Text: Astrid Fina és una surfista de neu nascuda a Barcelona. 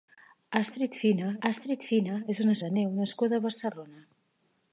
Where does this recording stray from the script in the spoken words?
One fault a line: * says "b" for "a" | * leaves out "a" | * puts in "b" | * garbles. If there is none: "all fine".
* puts in "astrid Fina"
* leaves out "surfista"